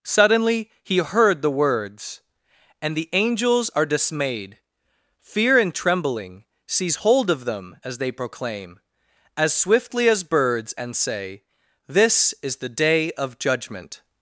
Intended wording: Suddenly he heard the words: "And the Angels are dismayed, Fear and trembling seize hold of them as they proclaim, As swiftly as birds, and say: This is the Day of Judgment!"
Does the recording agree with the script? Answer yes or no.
yes